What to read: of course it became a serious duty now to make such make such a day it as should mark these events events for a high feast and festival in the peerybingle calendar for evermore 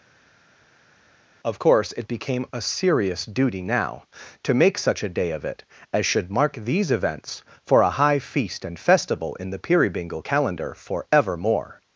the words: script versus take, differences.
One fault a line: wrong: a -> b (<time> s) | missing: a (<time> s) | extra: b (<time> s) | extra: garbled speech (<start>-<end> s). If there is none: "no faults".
missing: make such (5.0 s)
extra: of (5.3 s)
missing: events (7.4 s)